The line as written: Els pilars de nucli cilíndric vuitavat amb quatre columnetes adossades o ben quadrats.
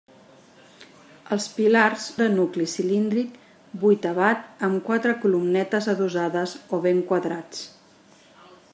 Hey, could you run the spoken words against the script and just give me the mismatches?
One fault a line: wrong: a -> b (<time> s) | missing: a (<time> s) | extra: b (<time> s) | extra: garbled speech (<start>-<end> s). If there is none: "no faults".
no faults